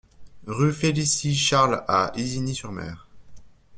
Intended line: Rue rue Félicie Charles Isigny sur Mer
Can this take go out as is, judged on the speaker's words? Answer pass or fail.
fail